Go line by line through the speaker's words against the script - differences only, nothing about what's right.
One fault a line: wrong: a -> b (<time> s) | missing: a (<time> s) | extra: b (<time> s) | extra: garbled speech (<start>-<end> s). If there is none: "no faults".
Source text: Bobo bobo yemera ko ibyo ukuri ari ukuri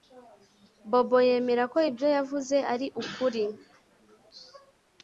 missing: bobo (1.2 s)
wrong: ukuri -> yavuze (2.2 s)